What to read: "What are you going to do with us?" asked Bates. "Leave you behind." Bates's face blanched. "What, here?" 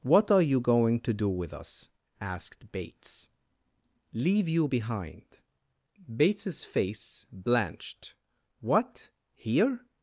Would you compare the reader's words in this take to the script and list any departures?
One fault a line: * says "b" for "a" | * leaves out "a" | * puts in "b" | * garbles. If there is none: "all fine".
all fine